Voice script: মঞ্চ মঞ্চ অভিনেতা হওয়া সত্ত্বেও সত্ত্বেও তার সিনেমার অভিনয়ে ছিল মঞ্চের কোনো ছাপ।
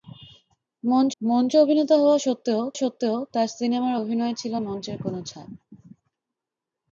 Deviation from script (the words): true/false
false